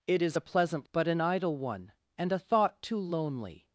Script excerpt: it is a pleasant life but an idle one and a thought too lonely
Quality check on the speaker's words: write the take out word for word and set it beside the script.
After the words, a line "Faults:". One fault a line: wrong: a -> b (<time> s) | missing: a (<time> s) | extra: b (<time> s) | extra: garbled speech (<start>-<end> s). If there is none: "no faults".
it is a pleasant but an idle one and a thought too lonely
Faults:
missing: life (0.9 s)